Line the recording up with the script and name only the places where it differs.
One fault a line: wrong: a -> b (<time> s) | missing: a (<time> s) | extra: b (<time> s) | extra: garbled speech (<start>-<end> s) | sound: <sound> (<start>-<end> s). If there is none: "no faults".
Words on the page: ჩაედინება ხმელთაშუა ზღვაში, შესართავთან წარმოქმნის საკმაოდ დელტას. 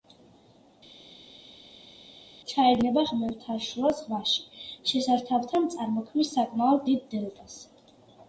extra: დიდ (6.9 s)